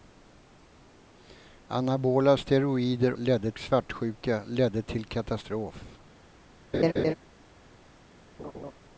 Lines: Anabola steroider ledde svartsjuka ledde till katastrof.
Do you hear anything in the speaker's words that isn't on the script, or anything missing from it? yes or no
no